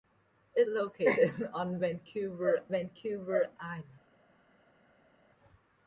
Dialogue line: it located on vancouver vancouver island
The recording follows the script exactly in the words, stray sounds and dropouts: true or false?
true